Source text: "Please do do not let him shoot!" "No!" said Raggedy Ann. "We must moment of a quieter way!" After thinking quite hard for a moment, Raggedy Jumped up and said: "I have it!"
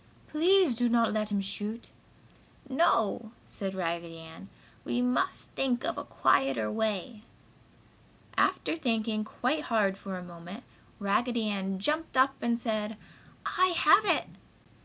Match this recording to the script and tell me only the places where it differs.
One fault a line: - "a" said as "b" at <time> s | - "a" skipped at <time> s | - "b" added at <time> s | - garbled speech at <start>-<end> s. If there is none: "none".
- "do" skipped at 0.9 s
- "moment" said as "think" at 5.6 s
- "Ann" added at 11.5 s